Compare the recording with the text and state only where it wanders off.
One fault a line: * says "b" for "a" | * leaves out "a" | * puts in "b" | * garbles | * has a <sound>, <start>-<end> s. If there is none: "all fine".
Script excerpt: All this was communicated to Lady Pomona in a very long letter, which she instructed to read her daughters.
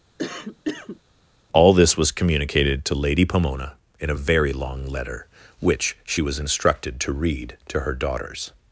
* has a cough, 0.2-1.0 s
* puts in "was"
* puts in "to"